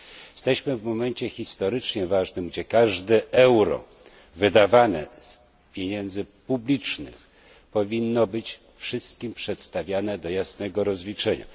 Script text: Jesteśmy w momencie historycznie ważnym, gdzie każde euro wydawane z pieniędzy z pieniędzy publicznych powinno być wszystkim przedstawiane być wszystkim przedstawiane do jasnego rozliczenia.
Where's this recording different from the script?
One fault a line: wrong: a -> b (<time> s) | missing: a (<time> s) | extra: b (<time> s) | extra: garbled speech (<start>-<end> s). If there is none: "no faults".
missing: z pieniędzy (6.3 s)
missing: być wszystkim przedstawiane (10.2 s)